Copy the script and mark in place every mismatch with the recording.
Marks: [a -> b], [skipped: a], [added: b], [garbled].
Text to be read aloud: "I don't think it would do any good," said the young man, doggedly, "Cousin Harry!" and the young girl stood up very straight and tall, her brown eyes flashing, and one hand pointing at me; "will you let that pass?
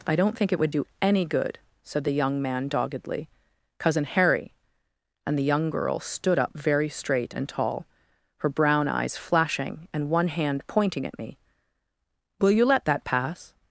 "I don't think it would do any good," said the young man, doggedly, "Cousin Harry!" and the young girl stood up very straight and tall, her brown eyes flashing, and one hand pointing at me; "will you let that pass?